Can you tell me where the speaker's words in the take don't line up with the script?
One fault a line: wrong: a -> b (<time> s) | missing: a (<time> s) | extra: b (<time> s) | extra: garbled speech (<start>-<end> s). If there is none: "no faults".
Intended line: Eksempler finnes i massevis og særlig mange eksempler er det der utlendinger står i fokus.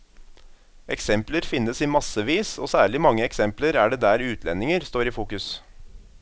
no faults